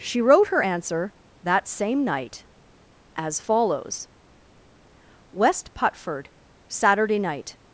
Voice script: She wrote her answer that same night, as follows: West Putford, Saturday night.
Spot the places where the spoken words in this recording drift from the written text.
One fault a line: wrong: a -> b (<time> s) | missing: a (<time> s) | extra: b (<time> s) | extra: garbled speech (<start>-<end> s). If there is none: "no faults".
no faults